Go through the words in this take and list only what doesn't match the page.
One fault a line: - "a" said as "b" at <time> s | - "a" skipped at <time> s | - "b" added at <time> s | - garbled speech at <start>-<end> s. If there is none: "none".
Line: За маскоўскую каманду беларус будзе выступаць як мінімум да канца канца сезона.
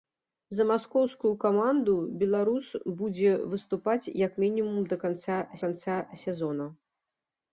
none